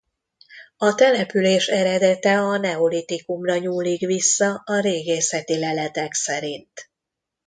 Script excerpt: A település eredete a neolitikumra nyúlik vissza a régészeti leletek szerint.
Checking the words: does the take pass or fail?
pass